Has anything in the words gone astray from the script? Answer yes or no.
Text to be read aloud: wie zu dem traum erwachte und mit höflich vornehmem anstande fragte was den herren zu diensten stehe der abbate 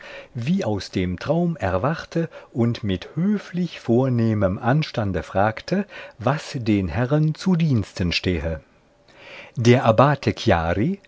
yes